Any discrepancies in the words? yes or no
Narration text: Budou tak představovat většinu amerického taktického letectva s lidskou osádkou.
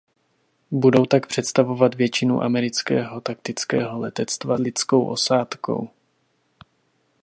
yes